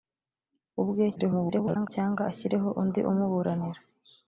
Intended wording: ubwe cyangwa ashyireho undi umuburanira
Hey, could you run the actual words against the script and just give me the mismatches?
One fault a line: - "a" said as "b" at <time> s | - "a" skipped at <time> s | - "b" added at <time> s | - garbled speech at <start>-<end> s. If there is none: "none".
- garbled speech at 1.2-1.9 s